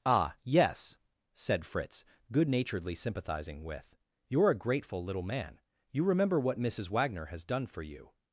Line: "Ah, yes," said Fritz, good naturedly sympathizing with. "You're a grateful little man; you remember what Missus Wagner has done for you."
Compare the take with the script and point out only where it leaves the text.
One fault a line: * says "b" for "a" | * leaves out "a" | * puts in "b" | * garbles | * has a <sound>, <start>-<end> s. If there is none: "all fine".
all fine